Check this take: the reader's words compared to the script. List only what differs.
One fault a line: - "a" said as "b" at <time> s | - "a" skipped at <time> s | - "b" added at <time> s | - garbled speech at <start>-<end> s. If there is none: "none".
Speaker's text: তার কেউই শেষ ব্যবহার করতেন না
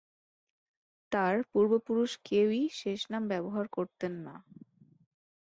- "পূর্বপুরুষ" added at 1.5 s
- "নাম" added at 3.1 s